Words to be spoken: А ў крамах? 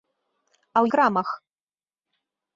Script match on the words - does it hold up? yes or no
yes